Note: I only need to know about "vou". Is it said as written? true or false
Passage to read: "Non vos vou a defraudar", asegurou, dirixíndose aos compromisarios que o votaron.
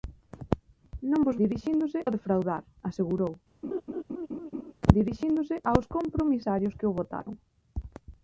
false